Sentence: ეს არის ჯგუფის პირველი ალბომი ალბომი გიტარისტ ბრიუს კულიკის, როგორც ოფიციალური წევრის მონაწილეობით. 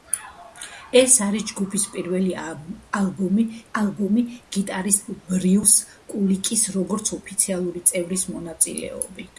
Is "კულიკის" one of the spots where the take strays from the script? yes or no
no